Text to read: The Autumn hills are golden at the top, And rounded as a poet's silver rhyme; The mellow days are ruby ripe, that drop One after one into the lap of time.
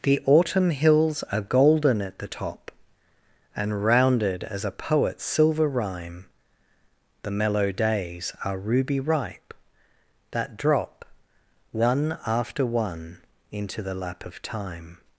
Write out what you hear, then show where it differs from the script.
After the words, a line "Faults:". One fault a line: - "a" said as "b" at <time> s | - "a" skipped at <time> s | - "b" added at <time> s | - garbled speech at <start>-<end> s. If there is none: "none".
The Autumn hills are golden at the top, And rounded as a poet's silver rhyme; The mellow days are ruby ripe, that drop One after one into the lap of time.
Faults:
none